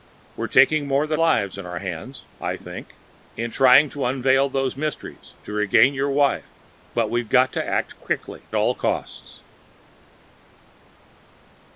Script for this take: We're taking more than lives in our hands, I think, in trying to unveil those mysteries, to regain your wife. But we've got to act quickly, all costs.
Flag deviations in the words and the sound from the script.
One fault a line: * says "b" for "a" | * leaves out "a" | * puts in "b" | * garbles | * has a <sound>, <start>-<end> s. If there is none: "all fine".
all fine